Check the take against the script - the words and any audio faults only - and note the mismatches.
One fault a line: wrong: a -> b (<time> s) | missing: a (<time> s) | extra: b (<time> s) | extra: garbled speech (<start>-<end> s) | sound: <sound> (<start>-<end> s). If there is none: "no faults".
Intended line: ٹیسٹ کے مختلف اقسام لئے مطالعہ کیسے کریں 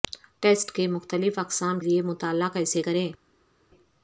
no faults